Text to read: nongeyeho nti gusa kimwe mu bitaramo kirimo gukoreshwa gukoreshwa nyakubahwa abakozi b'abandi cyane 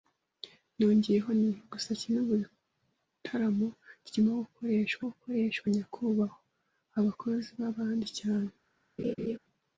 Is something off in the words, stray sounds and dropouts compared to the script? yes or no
yes